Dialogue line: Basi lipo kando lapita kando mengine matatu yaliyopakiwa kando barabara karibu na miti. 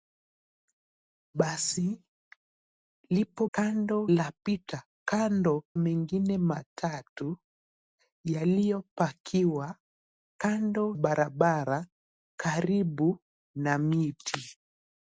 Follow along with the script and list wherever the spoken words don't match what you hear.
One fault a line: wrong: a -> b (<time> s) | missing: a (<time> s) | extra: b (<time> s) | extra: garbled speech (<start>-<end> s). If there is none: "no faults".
no faults